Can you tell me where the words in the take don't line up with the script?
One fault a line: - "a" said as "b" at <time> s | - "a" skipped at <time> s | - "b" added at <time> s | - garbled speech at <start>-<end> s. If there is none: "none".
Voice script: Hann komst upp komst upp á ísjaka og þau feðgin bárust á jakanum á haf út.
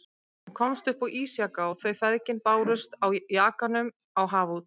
- "komst upp" skipped at 1.0 s